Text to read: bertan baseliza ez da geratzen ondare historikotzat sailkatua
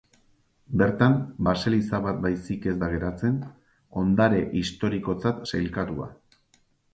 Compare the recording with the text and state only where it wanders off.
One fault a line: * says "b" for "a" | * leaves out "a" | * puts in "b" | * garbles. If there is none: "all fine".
* puts in "bat baizik"